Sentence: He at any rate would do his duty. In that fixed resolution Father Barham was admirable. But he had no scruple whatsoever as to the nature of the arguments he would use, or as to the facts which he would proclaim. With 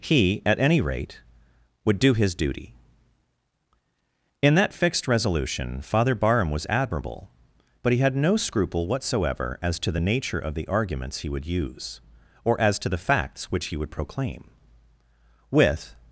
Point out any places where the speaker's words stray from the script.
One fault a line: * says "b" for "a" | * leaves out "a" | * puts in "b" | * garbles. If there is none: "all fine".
all fine